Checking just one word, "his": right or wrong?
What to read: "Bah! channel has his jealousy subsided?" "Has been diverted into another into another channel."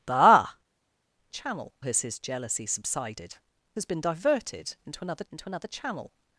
right